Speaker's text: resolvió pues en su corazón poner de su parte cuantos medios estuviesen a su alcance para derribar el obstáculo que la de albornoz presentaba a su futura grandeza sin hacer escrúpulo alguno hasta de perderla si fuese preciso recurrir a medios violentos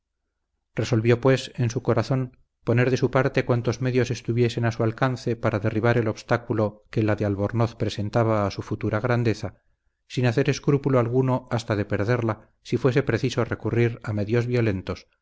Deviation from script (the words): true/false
false